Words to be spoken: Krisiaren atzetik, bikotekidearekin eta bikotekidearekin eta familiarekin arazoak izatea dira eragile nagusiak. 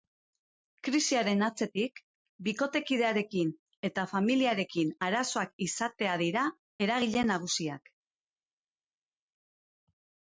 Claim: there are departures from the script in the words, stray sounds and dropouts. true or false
true